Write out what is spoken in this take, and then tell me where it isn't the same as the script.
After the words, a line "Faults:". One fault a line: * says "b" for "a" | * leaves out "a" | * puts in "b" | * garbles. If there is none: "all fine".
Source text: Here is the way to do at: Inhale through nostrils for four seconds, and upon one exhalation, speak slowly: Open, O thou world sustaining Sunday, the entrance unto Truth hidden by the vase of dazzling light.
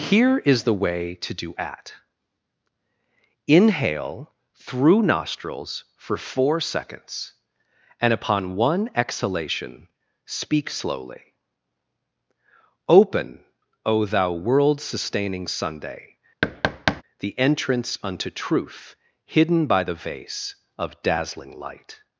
Here is the way to do at: Inhale through nostrils for four seconds, and upon one exhalation, speak slowly: Open, O thou world sustaining Sunday, the entrance unto Truth hidden by the vase of dazzling light.
Faults:
all fine